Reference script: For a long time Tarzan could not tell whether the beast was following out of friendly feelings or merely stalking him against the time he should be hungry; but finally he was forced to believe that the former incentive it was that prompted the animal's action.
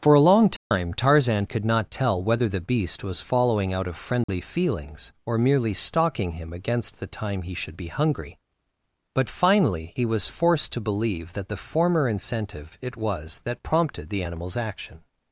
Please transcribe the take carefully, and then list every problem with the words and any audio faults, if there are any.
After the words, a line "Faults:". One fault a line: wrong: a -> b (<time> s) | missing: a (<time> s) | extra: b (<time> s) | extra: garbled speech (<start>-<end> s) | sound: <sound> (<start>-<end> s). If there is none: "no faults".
For a long time Tarzan could not tell whether the beast was following out of friendly feelings or merely stalking him against the time he should be hungry; but finally he was forced to believe that the former incentive it was that prompted the animal's action.
Faults:
sound: dropout (0.6-0.7 s)
sound: dropout (4.2-4.3 s)